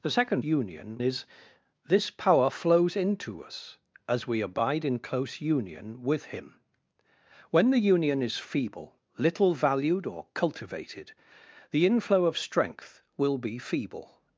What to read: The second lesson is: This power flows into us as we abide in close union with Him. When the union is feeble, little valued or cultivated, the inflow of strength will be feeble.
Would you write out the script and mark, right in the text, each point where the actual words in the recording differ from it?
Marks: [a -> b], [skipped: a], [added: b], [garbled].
The second [lesson -> union] is: This power flows into us as we abide in close union with Him. When the union is feeble, little valued or cultivated, the inflow of strength will be feeble.